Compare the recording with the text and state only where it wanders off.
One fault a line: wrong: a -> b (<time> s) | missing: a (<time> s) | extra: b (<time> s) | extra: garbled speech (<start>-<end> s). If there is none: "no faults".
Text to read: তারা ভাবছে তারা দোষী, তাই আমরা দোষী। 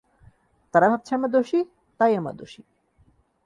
wrong: তারা -> আমরা (1.1 s)